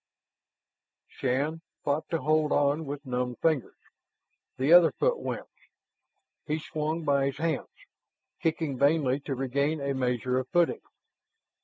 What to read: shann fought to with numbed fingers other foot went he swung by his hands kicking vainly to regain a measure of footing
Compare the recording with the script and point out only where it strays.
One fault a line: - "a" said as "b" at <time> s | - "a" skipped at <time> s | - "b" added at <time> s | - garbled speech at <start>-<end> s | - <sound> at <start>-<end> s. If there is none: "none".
- "hold on" added at 2.2 s
- "the" added at 4.6 s